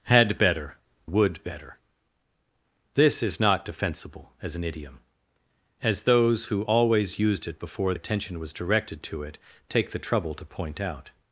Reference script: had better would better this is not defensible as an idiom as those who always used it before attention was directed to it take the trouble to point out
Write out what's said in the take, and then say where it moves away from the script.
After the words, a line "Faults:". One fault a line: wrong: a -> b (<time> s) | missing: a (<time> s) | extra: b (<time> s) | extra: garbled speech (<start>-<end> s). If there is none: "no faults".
had better would better this is not defensible as an idiom as those who always used it before attention was directed to it take the trouble to point out
Faults:
no faults